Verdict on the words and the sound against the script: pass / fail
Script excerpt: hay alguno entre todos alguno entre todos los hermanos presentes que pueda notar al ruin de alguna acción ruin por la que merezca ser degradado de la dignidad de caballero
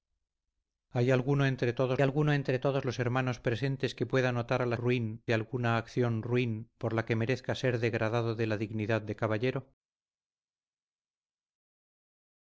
pass